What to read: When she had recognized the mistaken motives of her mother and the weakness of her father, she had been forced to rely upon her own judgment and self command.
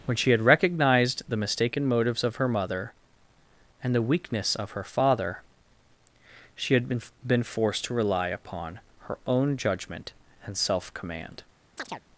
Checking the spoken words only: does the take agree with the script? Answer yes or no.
no